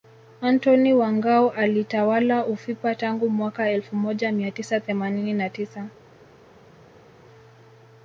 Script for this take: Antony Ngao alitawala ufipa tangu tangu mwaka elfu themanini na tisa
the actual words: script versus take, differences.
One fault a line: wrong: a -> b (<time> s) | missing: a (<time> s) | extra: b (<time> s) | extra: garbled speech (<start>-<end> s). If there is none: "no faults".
extra: wa (0.9 s)
missing: tangu (3.3 s)
extra: moja mia tisa (4.0 s)